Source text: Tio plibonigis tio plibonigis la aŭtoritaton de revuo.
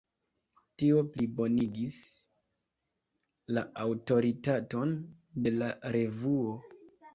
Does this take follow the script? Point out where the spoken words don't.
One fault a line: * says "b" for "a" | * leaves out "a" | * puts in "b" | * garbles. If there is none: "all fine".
* leaves out "tio plibonigis"
* puts in "la"